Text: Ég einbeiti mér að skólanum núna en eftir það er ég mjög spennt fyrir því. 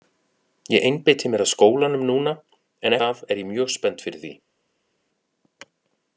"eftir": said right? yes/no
no